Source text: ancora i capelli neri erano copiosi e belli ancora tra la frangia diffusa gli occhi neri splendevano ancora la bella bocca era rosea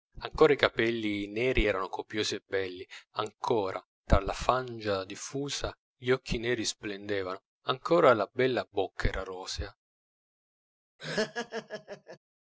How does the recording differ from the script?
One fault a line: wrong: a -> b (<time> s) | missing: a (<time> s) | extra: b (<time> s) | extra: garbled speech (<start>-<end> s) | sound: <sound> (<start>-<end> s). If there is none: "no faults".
sound: laugh (11.0-12.2 s)